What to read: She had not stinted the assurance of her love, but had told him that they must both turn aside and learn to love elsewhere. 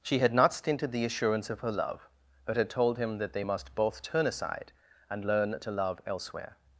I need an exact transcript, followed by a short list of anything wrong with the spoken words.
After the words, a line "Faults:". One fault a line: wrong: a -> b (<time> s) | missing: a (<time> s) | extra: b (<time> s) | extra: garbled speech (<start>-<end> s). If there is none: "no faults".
She had not stinted the assurance of her love, but had told him that they must both turn aside and learn to love elsewhere.
Faults:
no faults